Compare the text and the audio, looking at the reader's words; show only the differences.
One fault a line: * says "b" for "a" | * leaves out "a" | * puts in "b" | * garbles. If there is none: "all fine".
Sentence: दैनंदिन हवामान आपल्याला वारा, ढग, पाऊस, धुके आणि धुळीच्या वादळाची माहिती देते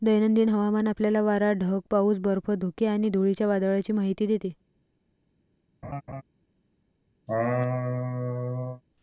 * puts in "बर्फ"